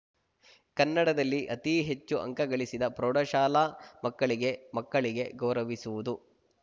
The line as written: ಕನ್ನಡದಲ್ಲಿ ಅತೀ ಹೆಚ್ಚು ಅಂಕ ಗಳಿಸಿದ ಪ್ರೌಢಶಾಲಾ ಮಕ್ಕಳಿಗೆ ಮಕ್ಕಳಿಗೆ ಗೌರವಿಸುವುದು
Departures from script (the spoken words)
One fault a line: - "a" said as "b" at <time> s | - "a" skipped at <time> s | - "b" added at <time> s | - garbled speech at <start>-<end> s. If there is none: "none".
none